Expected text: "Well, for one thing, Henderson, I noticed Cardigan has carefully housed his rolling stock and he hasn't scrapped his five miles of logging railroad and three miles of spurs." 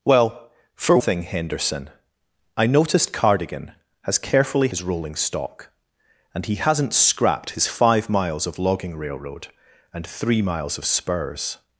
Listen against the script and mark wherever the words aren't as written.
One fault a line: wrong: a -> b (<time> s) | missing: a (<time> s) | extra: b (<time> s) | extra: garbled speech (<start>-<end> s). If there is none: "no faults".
missing: one (1.0 s)
missing: housed (4.7 s)